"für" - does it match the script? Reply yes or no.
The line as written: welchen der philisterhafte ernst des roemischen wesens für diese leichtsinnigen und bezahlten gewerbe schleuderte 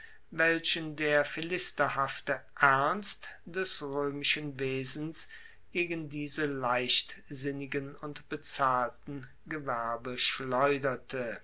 no